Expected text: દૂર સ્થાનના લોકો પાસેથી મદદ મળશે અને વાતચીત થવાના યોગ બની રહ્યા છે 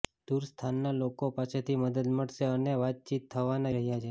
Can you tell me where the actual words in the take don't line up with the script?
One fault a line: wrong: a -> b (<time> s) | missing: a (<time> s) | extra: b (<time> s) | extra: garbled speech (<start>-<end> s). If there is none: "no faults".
missing: યોગ બની (3.8 s)